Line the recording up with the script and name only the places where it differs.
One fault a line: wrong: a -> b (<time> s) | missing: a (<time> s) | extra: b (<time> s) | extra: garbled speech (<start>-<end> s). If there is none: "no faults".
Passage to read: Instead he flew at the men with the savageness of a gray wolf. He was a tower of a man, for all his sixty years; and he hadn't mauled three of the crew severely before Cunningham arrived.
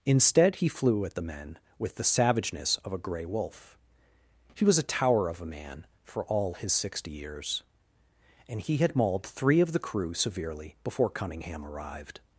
wrong: hadn't -> had (8.8 s)